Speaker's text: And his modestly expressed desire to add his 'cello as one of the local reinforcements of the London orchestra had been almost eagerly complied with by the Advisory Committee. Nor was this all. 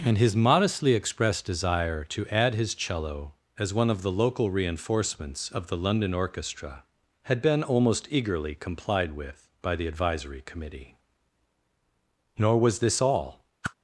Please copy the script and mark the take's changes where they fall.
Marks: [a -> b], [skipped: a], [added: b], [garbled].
And his modestly expressed desire to add his 'cello as one of the local reinforcements of the London orchestra had been almost eagerly complied with by the Advisory Committee. Nor was this all.